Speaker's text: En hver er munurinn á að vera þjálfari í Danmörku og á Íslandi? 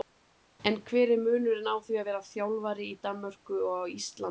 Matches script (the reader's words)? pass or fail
fail